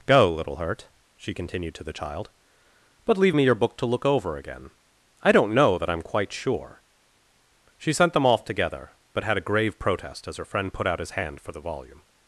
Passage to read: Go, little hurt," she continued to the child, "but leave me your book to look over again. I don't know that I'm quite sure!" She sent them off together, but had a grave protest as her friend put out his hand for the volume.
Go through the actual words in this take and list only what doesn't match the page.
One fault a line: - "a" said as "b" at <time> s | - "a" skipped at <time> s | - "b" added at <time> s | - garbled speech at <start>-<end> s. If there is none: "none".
none